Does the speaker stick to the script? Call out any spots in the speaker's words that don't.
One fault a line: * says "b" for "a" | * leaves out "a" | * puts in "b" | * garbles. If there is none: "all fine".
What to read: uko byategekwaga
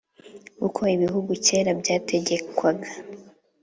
* puts in "ibihugu kera"